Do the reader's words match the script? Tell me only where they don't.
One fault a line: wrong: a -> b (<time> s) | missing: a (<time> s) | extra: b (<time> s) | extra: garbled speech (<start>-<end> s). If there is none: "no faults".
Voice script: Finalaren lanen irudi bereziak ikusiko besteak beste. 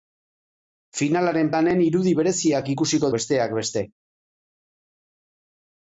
no faults